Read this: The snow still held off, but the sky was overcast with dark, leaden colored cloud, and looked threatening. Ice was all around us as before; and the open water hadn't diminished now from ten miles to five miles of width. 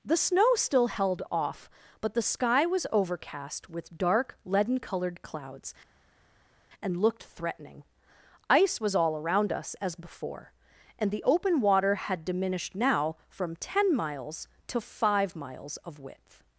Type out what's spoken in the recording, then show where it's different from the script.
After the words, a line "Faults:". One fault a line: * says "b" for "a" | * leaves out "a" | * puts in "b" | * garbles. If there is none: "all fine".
The snow still held off, but the sky was overcast with dark, leaden colored clouds, and looked threatening. Ice was all around us as before; and the open water had diminished now from ten miles to five miles of width.
Faults:
* says "clouds" for "cloud"
* says "had" for "hadn't"